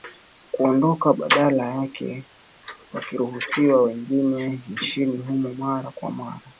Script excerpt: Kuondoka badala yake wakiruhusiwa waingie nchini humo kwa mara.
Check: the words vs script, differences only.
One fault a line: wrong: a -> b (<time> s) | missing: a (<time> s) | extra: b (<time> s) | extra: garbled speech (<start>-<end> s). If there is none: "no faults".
extra: mara (5.5 s)